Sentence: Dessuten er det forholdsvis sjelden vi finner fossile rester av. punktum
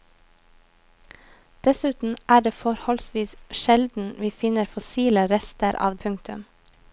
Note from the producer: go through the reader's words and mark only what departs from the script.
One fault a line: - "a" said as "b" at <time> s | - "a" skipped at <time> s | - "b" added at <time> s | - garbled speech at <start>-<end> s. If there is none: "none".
none